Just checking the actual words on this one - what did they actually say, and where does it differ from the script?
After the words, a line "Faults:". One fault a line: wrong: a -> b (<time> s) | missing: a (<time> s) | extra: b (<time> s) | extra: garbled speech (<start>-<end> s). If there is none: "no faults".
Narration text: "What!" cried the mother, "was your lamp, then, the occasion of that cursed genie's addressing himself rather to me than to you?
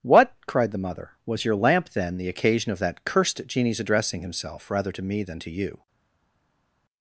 "What!" cried the mother, "was your lamp, then, the occasion of that cursed genie's addressing himself rather to me than to you?
Faults:
no faults